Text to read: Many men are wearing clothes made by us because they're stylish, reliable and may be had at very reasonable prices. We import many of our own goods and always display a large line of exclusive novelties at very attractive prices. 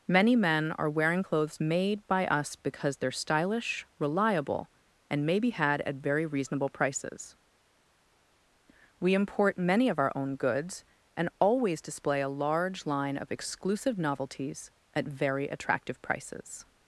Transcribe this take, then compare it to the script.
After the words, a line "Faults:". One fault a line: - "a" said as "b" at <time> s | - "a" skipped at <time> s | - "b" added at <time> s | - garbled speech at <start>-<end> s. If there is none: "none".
Many men are wearing clothes made by us because they're stylish, reliable and may be had at very reasonable prices. We import many of our own goods and always display a large line of exclusive novelties at very attractive prices.
Faults:
none